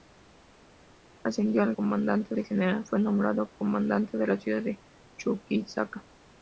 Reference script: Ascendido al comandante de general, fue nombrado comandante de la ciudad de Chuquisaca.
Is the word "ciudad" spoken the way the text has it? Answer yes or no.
yes